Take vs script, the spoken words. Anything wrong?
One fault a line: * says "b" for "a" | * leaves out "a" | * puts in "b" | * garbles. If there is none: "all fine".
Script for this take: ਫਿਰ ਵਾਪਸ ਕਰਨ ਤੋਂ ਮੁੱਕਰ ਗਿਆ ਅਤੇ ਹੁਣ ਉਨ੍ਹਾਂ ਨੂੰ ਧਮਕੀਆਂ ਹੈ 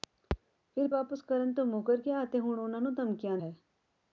all fine